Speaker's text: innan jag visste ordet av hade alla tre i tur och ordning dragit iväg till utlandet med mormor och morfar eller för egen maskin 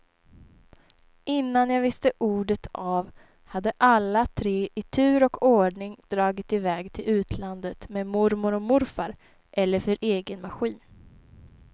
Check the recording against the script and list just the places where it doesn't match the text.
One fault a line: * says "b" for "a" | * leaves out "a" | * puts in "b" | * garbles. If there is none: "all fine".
all fine